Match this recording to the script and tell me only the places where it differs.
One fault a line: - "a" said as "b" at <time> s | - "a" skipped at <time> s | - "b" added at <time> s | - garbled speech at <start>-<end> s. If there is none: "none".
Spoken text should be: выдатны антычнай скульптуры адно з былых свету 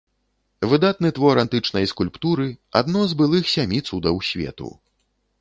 - "твор" added at 1.2 s
- "сямі цудаў" added at 3.6 s